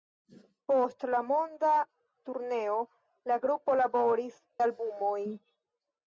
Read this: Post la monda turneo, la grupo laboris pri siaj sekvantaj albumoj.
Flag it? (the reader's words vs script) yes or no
yes